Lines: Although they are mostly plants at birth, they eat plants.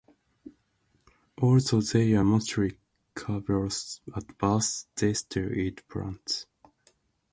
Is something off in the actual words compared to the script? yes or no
yes